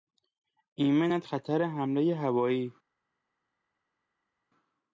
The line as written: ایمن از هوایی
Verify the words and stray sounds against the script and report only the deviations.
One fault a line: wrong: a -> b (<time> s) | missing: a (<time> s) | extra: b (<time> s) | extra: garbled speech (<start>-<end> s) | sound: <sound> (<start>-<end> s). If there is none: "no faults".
extra: خطر حملهی (1.2 s)